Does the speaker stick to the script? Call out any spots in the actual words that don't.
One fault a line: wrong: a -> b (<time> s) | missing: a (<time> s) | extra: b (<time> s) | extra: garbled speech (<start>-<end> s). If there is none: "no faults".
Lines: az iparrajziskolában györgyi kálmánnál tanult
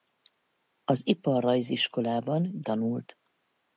missing: györgyi kálmánnál (2.6 s)